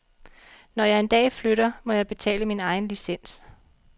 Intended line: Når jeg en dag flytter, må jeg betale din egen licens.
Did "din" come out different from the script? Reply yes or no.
yes